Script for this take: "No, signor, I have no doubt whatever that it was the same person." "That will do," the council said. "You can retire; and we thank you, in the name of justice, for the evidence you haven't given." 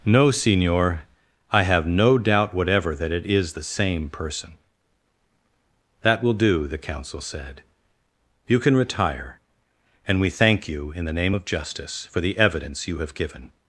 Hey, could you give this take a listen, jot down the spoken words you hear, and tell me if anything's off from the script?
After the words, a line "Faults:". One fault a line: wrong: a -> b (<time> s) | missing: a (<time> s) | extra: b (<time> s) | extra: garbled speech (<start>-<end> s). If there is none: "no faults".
"No, signor, I have no doubt whatever that it is the same person." "That will do," the council said. "You can retire; and we thank you, in the name of justice, for the evidence you have given."
Faults:
wrong: was -> is (3.2 s)
wrong: haven't -> have (13.0 s)